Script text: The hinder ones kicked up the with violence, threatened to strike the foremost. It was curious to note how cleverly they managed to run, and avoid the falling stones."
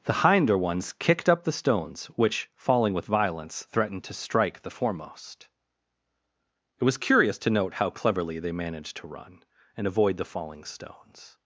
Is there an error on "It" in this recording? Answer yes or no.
no